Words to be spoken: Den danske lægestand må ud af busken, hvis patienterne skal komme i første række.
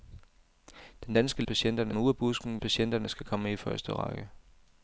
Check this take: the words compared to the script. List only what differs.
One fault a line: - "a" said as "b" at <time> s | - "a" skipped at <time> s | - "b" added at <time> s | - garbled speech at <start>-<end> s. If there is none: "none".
- "lægestand" said as "patienterne" at 1.4 s
- "hvis" skipped at 2.6 s